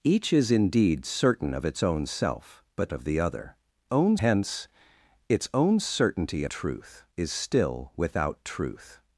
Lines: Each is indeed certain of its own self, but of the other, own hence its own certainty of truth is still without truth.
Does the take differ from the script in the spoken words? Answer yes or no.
no